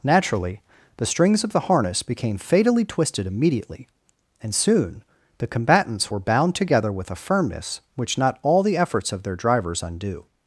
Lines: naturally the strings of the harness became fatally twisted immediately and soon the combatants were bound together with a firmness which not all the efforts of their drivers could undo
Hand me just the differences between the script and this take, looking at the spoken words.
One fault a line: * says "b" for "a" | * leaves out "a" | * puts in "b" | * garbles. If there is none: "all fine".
* leaves out "could"